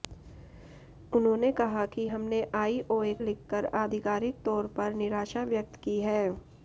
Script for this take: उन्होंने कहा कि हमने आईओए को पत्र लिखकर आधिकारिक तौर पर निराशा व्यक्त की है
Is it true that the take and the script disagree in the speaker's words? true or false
true